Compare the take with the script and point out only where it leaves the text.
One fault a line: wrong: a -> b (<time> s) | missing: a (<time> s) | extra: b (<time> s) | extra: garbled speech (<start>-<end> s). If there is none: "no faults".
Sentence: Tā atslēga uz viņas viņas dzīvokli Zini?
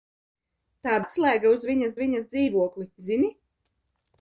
no faults